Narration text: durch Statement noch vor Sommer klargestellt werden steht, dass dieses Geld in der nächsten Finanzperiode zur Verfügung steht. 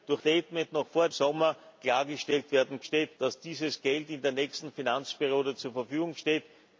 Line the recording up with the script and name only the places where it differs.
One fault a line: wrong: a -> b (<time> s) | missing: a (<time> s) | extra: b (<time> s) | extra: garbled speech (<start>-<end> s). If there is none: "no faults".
no faults